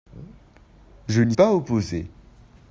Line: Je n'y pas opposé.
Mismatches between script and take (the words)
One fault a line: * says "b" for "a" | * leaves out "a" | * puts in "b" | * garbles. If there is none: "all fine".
all fine